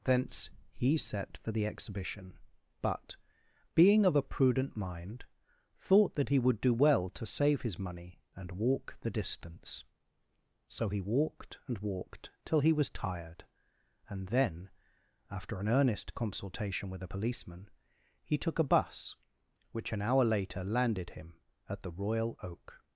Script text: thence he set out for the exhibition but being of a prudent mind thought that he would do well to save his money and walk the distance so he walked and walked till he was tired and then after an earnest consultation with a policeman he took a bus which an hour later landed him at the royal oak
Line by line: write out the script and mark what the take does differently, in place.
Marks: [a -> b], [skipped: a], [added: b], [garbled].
thence he set [skipped: out] for the exhibition but being of a prudent mind thought that he would do well to save his money and walk the distance so he walked and walked till he was tired and then after an earnest consultation with a policeman he took a bus which an hour later landed him at the royal oak